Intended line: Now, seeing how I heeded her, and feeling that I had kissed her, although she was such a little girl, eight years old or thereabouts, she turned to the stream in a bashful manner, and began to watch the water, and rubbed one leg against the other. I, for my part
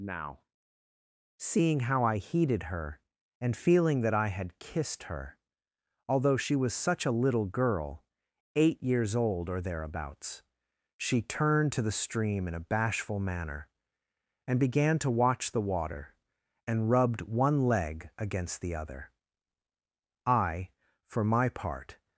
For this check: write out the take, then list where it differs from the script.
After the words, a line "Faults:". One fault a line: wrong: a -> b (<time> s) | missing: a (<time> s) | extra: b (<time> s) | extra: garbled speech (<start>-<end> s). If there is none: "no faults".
Now, seeing how I heeded her, and feeling that I had kissed her, although she was such a little girl, eight years old or thereabouts, she turned to the stream in a bashful manner, and began to watch the water, and rubbed one leg against the other. I, for my part
Faults:
no faults